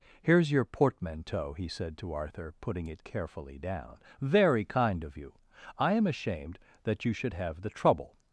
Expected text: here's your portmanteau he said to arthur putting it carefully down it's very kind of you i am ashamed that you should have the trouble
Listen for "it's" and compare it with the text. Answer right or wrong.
wrong